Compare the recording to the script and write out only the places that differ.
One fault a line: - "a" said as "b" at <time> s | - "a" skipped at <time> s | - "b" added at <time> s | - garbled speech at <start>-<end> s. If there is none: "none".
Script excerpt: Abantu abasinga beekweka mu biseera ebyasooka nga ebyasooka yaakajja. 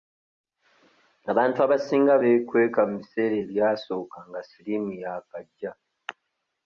- "ebyasooka" said as "siriimu" at 4.5 s